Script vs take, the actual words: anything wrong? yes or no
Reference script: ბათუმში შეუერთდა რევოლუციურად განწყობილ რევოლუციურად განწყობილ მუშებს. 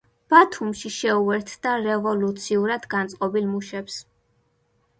yes